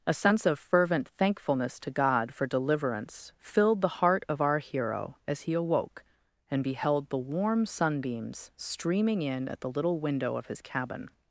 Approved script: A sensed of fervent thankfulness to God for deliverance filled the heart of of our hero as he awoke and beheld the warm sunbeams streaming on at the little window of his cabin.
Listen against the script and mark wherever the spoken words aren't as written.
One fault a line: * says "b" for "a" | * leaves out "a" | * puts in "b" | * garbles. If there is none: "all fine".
* says "sense" for "sensed"
* leaves out "of"
* says "in" for "on"